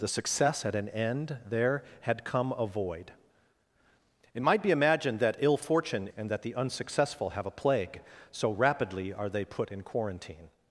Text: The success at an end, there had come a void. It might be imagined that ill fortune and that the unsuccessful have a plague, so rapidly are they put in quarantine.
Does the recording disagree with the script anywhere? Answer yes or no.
no